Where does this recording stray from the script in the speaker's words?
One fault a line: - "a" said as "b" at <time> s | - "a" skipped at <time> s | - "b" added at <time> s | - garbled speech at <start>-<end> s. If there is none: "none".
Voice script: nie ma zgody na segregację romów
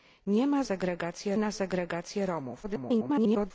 - "zgody" said as "segregację" at 0.6 s
- garbled speech at 2.6-3.5 s